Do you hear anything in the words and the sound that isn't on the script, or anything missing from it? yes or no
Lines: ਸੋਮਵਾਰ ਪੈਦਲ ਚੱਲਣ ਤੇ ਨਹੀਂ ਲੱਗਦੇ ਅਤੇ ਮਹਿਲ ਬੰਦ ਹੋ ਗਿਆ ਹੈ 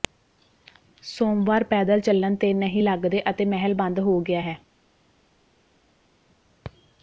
no